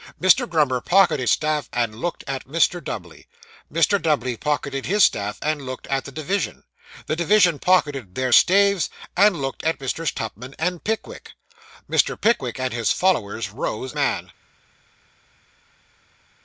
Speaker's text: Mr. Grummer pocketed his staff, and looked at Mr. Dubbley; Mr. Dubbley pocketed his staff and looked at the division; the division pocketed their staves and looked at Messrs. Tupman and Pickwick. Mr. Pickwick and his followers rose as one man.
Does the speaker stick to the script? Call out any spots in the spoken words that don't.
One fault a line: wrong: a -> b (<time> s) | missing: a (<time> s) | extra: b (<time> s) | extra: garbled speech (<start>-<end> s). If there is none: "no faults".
missing: his (1.3 s)
missing: as one (13.9 s)